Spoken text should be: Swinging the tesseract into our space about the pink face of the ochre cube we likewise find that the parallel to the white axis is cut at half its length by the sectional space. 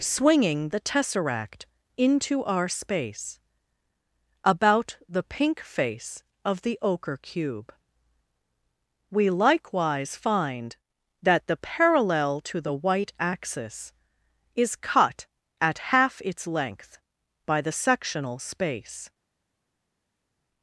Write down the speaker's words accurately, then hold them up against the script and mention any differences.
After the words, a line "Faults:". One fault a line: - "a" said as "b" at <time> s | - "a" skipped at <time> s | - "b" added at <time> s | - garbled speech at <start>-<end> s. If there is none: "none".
Swinging the tesseract into our space about the pink face of the ochre cube we likewise find that the parallel to the white axis is cut at half its length by the sectional space.
Faults:
none